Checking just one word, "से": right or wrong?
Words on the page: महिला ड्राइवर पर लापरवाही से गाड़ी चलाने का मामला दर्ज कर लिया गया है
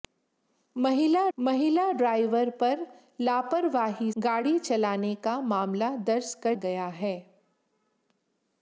wrong